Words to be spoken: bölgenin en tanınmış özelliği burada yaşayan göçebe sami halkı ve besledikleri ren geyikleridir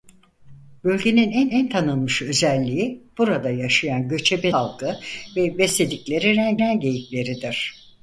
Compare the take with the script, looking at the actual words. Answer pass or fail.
fail